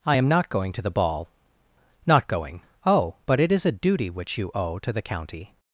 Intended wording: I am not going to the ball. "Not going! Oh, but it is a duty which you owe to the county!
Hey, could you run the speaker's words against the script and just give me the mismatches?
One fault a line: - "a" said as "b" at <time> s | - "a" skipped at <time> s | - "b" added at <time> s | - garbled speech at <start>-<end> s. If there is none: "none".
none